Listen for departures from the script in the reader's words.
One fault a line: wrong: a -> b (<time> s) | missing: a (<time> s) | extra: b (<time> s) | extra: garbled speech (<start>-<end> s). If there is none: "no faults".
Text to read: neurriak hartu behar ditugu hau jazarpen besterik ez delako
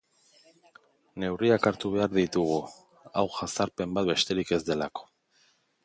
extra: bat (4.0 s)